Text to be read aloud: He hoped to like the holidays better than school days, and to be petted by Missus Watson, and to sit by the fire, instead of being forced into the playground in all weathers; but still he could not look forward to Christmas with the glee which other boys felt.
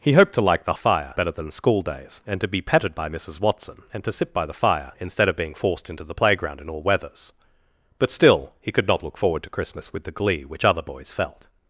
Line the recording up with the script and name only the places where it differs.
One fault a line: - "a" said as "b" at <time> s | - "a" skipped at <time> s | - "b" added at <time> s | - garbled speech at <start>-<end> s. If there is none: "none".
- "holidays" said as "fire" at 0.7 s